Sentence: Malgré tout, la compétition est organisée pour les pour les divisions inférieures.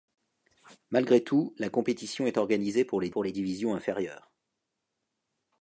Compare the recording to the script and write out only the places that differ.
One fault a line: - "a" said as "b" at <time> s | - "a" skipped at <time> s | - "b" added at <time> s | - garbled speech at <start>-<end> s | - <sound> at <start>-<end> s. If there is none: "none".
none